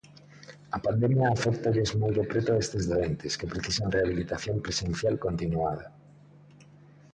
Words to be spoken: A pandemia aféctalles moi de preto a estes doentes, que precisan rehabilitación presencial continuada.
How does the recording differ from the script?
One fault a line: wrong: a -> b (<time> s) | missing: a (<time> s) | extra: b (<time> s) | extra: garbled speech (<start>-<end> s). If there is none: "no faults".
no faults